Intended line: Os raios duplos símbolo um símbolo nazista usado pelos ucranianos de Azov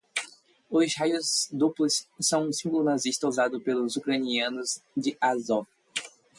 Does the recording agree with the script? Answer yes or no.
no